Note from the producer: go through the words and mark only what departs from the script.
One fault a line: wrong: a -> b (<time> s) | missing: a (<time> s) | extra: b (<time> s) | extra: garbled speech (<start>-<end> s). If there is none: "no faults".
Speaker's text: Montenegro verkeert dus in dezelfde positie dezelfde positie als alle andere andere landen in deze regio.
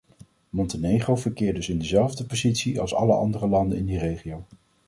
missing: dezelfde positie (2.8 s)
missing: andere (3.5 s)
wrong: deze -> die (3.9 s)